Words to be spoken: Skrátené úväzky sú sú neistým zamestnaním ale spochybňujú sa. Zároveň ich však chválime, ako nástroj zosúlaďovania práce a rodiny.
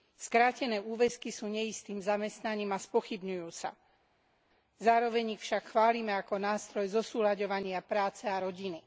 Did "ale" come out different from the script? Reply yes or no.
yes